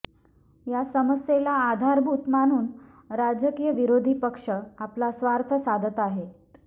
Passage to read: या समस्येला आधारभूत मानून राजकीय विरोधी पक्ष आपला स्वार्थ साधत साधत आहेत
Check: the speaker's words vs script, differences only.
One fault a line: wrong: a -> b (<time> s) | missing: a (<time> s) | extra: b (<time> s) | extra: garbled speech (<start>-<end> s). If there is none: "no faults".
missing: साधत (6.0 s)